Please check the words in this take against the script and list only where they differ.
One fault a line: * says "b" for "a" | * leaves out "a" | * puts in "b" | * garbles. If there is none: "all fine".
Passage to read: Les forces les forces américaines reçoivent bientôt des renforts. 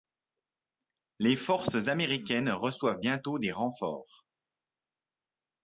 * leaves out "les forces"